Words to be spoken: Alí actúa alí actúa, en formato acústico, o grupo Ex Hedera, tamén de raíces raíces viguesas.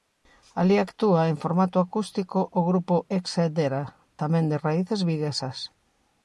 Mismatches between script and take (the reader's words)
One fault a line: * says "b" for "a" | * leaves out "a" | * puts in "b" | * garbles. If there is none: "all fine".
* leaves out "alí actúa"
* leaves out "raíces"